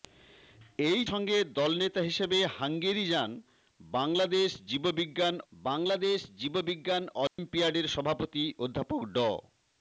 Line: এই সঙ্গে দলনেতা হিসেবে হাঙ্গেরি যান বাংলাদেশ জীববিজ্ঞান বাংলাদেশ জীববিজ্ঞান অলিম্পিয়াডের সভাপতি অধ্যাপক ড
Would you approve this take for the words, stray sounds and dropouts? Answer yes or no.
no